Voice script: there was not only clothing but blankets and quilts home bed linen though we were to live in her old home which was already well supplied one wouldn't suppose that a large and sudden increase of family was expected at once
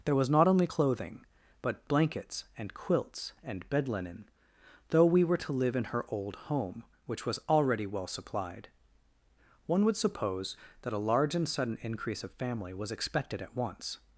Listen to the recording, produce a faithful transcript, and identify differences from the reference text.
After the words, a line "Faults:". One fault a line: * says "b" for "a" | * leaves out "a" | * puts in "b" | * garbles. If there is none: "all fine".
there was not only clothing but blankets and quilts and bed linen though we were to live in her old home which was already well supplied one would suppose that a large and sudden increase of family was expected at once
Faults:
* says "and" for "home"
* says "would" for "wouldn't"